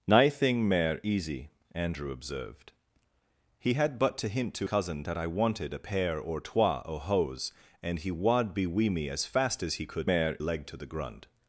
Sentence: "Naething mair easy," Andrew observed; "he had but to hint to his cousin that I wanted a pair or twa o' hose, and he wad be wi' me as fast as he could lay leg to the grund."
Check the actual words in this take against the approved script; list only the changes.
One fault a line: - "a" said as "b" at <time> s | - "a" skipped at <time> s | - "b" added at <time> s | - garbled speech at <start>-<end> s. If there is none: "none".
- "his" skipped at 4.7 s
- "lay" said as "mair" at 10.0 s